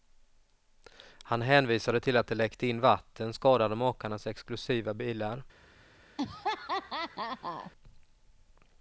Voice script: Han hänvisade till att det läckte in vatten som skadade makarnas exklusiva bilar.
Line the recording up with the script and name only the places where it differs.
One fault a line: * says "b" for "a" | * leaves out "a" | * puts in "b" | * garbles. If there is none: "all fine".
* leaves out "som"